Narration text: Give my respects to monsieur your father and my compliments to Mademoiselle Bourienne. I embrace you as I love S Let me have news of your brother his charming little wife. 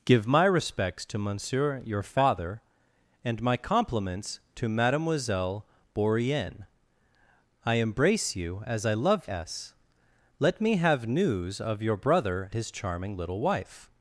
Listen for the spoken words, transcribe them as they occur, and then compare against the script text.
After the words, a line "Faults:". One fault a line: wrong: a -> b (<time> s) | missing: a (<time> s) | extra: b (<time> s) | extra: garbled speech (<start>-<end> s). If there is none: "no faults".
Give my respects to monsieur your father and my compliments to Mademoiselle Bourienne. I embrace you as I love S Let me have news of your brother his charming little wife.
Faults:
no faults